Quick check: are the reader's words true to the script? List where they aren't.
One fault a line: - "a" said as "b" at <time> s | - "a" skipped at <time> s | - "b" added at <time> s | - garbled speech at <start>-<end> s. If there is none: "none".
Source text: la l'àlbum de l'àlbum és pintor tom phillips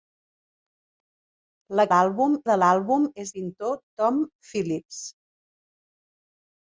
none